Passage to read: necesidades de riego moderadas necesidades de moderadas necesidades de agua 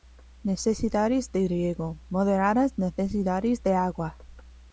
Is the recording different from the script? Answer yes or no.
yes